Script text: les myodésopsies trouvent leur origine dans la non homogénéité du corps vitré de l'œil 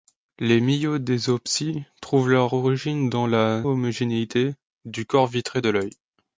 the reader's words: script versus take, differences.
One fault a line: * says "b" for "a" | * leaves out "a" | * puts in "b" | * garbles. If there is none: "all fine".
* leaves out "non"